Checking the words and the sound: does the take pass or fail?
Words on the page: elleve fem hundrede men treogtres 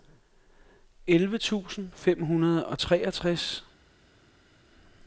fail